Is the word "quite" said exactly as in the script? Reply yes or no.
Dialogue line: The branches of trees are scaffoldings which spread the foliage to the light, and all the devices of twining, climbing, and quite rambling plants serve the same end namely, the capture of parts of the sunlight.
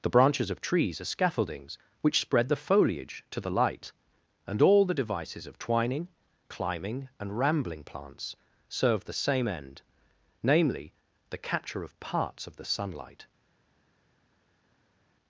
no